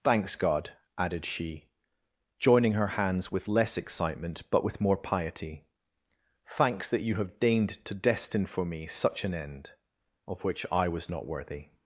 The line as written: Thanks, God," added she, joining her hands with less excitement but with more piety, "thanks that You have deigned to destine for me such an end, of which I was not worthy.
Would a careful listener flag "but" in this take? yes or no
no